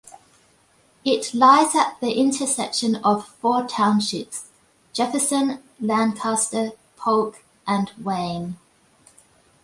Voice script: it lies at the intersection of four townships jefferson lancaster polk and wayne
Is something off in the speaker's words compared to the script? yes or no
no